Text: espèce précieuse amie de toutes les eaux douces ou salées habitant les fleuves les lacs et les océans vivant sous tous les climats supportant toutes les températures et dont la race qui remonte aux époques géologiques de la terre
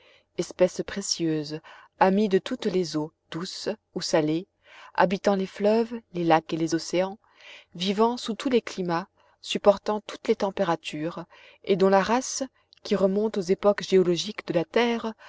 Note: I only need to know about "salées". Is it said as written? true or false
true